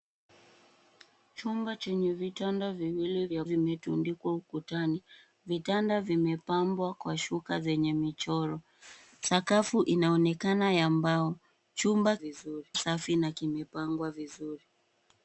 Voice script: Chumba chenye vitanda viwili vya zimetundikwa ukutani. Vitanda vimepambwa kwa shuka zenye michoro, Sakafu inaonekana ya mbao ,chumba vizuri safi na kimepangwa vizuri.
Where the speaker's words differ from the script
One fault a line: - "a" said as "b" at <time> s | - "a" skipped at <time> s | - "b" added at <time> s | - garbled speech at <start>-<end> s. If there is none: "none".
none